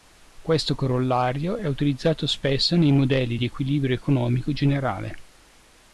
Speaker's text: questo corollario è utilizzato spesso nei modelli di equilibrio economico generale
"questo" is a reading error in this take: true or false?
false